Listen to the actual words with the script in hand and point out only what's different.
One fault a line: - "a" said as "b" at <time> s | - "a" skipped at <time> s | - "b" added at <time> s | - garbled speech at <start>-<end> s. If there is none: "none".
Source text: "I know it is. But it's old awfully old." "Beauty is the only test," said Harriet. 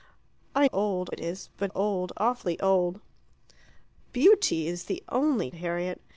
- "know" said as "old" at 0.7 s
- "it's" skipped at 1.7 s
- "test said" skipped at 5.5 s